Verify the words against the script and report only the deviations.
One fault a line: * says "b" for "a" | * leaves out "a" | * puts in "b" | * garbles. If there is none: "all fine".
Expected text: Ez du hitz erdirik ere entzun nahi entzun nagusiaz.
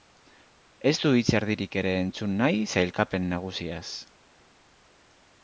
* says "sailkapen" for "entzun"